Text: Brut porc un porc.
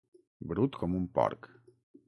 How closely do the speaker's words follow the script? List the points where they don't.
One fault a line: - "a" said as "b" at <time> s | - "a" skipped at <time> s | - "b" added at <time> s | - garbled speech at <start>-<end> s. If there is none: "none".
- "porc" said as "com" at 0.8 s